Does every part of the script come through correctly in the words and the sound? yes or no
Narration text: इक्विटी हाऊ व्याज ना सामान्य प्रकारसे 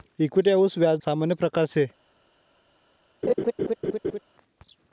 no